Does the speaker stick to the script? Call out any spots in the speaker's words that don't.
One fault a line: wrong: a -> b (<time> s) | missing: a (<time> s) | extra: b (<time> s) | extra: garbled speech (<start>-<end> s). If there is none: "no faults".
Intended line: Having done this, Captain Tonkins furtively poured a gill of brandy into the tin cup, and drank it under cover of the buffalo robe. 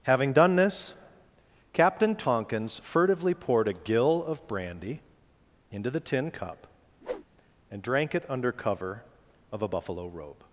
wrong: the -> a (9.6 s)